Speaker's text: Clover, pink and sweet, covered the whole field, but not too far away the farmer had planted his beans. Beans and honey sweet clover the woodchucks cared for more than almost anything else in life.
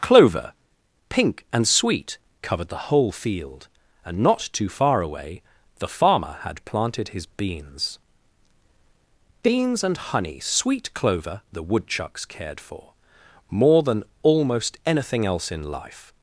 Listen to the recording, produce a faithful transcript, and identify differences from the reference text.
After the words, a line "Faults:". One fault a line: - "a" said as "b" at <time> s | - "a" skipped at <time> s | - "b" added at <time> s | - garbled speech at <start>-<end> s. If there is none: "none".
Clover, pink and sweet, covered the whole field, and not too far away the farmer had planted his beans. Beans and honey sweet clover the woodchucks cared for more than almost anything else in life.
Faults:
- "but" said as "and" at 4.0 s